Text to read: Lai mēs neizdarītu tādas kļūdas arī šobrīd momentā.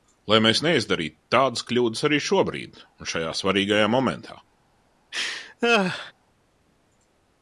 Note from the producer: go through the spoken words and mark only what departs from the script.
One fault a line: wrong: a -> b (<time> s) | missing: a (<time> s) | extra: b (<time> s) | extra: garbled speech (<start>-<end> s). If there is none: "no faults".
extra: un šajā svarīgajā (3.0 s)